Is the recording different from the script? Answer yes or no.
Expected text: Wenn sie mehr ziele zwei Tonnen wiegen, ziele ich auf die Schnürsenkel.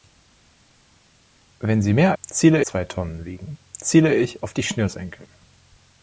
no